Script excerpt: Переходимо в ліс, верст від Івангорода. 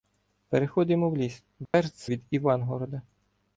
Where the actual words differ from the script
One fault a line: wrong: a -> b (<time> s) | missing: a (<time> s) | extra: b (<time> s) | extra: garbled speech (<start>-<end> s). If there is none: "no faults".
no faults